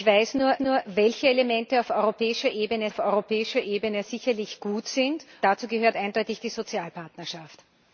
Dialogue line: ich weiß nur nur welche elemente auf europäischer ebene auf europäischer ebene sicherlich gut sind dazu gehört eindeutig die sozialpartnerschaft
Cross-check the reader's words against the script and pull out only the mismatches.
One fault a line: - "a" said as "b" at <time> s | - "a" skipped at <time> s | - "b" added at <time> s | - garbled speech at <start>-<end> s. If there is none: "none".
none